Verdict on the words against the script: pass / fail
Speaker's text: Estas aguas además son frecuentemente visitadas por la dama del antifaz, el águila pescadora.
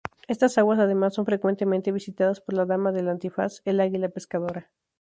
pass